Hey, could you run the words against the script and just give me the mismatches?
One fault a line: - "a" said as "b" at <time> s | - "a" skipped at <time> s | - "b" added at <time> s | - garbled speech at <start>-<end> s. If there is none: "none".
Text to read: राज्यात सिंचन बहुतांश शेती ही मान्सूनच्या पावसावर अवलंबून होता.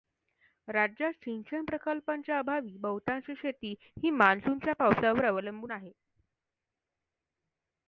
- "प्रकल्पांच्या अभावी" added at 1.6 s
- "होता" said as "आहे" at 5.7 s